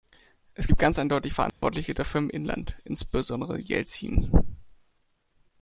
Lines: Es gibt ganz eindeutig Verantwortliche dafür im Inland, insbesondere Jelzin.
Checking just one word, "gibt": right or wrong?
right